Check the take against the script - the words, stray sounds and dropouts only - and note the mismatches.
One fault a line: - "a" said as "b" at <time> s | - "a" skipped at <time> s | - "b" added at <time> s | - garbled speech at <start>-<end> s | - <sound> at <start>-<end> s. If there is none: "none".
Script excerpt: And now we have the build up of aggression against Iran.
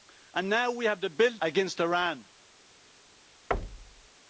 - "up of aggression" skipped at 1.4 s
- thud at 3.5-4.1 s